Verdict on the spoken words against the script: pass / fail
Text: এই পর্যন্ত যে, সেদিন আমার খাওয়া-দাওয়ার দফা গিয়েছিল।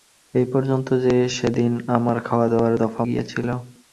pass